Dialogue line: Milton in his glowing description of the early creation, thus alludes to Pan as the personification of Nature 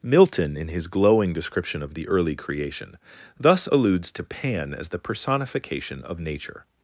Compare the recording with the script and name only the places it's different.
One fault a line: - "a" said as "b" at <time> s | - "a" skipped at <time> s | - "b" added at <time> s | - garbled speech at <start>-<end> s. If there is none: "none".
none